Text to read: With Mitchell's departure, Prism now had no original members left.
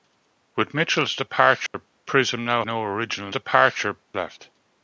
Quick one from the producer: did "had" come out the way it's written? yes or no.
no